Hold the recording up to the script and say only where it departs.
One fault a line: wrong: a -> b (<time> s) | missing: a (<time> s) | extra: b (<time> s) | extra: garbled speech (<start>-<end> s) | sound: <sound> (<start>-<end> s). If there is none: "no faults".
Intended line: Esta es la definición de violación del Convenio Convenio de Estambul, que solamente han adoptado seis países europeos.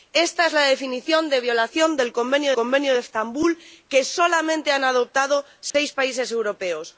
sound: dropout (5.7-5.7 s)